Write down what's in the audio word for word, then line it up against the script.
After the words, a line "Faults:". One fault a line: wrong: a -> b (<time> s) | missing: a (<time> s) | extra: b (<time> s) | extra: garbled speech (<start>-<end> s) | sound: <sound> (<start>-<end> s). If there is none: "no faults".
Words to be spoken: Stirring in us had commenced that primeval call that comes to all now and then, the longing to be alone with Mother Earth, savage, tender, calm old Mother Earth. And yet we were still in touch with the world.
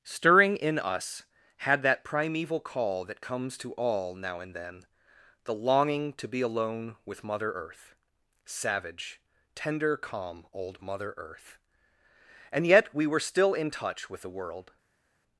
Stirring in us had that primeval call that comes to all now and then, the longing to be alone with Mother Earth, savage, tender, calm old Mother Earth. And yet we were still in touch with the world.
Faults:
missing: commenced (1.8 s)